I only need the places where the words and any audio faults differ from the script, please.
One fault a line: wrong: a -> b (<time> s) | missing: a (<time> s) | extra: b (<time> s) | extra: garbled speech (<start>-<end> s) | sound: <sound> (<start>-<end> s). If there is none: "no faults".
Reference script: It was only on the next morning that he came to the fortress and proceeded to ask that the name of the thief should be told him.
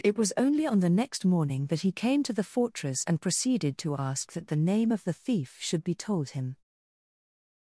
no faults